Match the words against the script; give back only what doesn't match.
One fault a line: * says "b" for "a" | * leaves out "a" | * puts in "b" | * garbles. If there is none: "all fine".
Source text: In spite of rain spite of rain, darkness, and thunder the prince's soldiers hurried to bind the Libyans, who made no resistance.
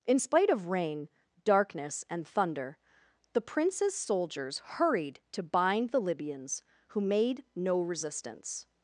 * leaves out "spite of rain"